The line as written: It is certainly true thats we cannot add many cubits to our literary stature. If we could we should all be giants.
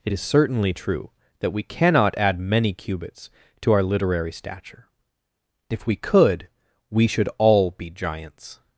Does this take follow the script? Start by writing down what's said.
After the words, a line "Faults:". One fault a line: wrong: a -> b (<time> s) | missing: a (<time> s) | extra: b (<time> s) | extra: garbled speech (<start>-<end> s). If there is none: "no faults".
It is certainly true that we cannot add many cubits to our literary stature. If we could we should all be giants.
Faults:
wrong: thats -> that (1.4 s)